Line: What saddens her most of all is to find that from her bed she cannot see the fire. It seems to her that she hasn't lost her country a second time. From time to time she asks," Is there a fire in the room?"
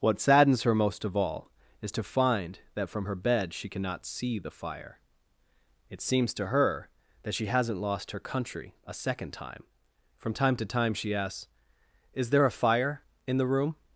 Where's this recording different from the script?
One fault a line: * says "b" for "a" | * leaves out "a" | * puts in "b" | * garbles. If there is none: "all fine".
all fine